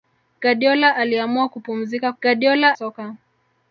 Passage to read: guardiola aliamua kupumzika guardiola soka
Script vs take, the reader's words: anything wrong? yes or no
no